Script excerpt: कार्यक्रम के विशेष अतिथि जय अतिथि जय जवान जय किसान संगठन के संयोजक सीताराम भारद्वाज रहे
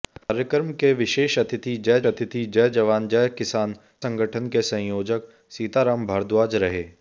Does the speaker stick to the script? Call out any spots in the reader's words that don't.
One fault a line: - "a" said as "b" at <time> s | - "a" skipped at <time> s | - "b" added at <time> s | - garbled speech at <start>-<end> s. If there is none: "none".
none